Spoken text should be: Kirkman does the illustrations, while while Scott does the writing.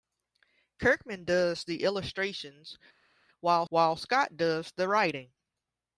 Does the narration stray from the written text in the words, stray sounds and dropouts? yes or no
no